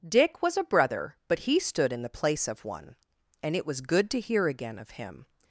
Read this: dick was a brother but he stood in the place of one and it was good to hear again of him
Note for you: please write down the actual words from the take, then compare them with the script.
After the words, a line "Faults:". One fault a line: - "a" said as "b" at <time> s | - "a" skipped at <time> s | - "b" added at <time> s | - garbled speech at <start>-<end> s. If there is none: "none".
dick was a brother but he stood in the place of one and it was good to hear again of him
Faults:
none